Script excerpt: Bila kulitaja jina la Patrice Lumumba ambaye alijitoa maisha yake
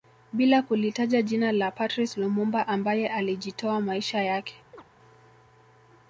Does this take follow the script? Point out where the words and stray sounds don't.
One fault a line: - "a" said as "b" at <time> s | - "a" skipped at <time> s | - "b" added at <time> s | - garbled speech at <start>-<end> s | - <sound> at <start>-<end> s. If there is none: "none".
- chirp at 4.7-4.8 s